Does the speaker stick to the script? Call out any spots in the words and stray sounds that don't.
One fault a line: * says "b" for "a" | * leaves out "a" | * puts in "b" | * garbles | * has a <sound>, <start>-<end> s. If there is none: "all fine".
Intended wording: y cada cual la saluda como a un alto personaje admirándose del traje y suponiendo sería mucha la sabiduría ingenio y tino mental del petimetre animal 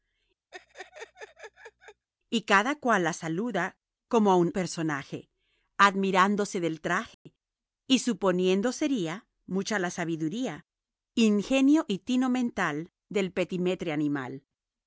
* has a laugh, 0.5-2.1 s
* leaves out "alto"
* has a dropout, 7.1-7.3 s